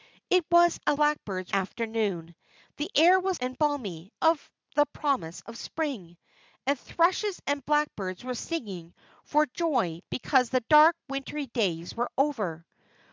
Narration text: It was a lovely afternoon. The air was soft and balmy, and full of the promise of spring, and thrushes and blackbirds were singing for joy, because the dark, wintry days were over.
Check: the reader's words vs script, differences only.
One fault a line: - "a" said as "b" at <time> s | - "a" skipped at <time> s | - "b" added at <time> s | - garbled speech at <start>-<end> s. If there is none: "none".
- "lovely" said as "blackbirds" at 0.9 s
- "soft" skipped at 3.4 s
- "and full" skipped at 4.1 s